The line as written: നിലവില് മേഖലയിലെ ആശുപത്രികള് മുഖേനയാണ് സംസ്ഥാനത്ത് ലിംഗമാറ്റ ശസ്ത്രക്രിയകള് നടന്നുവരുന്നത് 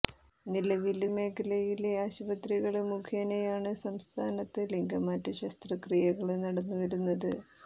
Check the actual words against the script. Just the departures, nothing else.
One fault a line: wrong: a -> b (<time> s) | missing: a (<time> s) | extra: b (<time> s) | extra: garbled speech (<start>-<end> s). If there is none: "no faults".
no faults